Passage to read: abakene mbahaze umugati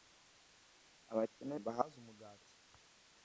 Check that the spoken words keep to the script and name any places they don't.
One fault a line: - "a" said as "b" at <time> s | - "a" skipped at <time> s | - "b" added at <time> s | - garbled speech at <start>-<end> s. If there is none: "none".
none